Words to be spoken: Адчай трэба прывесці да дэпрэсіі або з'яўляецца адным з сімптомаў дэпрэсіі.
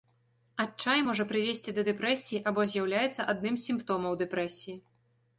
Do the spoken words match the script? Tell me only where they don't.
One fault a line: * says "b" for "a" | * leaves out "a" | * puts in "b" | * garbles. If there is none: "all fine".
* says "можа" for "трэба"